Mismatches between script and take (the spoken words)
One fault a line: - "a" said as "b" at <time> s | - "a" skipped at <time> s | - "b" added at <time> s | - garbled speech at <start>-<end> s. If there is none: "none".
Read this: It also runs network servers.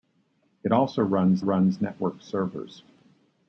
- "runs" added at 1.4 s